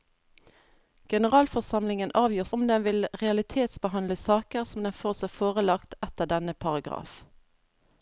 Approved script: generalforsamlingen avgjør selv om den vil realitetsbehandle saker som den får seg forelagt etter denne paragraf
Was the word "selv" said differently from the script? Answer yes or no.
yes